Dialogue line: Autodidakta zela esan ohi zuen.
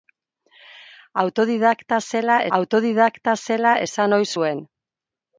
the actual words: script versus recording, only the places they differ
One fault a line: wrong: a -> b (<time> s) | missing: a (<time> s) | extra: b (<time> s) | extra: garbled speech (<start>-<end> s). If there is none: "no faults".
extra: autodidakta zela (2.6 s)